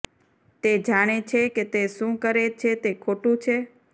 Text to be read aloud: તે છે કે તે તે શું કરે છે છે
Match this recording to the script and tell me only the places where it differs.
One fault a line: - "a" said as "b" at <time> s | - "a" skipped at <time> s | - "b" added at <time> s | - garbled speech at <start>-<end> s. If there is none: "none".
- "જાણે" added at 0.8 s
- "તે" skipped at 1.8 s
- "તે ખોટું" added at 2.8 s